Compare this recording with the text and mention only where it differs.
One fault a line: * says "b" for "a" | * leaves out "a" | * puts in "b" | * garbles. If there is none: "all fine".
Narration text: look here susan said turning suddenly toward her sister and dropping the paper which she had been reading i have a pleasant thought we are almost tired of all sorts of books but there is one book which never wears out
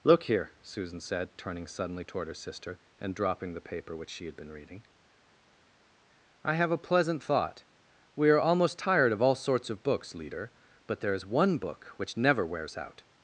* puts in "leader"